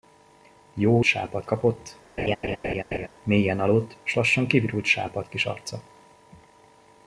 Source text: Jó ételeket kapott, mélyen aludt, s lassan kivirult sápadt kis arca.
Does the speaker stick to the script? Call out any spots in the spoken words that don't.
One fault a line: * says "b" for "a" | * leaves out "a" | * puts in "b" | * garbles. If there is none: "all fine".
* says "sápadt" for "ételeket"